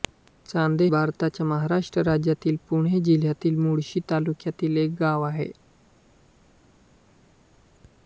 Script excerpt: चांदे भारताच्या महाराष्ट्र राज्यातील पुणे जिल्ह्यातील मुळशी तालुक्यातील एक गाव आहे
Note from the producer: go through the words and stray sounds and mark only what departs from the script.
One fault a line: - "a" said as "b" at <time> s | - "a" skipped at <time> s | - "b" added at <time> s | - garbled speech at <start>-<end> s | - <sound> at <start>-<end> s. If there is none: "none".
none